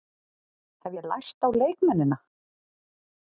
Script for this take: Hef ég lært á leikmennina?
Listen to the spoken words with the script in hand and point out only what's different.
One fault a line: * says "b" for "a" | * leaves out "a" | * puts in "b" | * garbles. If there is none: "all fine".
all fine